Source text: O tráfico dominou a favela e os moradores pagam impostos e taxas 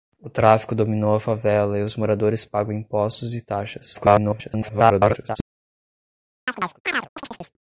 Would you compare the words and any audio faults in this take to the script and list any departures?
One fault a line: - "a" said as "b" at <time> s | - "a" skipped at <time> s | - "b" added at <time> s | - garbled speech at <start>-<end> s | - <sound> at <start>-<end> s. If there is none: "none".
- garbled speech at 3.9-5.4 s
- chirp at 6.5-7.6 s